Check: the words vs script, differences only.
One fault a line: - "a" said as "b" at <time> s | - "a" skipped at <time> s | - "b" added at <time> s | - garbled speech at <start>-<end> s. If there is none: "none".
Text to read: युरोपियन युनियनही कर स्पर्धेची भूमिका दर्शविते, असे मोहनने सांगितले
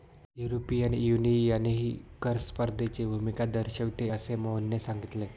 none